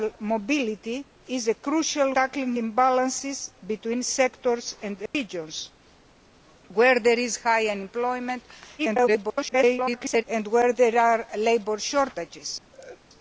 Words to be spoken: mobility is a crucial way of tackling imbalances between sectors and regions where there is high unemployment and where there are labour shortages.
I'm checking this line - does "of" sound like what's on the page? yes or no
no